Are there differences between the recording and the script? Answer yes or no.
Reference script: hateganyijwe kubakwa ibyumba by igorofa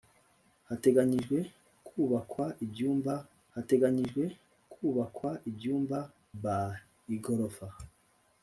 yes